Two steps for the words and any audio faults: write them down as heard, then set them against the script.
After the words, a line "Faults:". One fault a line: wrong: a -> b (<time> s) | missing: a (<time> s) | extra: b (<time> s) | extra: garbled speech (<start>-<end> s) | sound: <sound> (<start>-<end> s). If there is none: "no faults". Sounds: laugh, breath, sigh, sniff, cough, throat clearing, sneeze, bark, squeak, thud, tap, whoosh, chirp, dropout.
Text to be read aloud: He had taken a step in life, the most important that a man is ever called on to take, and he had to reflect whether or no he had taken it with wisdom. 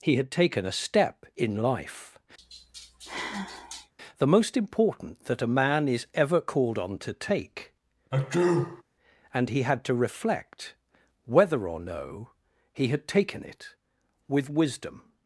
He had taken a step in life, the most important that a man is ever called on to take, and he had to reflect whether or no he had taken it with wisdom.
Faults:
sound: sigh (2.4-3.9 s)
sound: sneeze (8.1-8.8 s)